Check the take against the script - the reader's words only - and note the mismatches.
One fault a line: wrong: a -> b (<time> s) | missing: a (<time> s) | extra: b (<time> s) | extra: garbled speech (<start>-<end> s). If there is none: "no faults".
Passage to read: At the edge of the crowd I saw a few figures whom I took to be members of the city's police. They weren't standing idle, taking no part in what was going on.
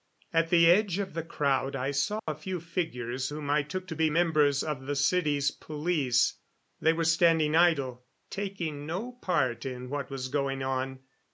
wrong: weren't -> were (6.9 s)